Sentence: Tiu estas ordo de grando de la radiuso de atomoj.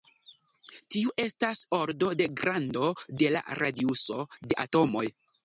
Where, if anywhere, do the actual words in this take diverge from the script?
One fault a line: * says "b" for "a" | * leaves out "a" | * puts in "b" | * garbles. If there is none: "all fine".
all fine